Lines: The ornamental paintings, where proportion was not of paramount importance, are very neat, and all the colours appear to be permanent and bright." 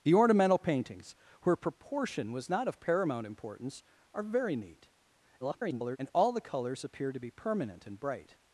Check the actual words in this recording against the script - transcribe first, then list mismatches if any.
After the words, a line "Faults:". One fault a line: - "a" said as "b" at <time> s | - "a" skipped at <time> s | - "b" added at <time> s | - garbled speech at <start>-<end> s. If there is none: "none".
The ornamental paintings, where proportion was not of paramount importance, are very neat, [garbled] and all the colours appear to be permanent and bright."
Faults:
- garbled speech at 5.4-6.0 s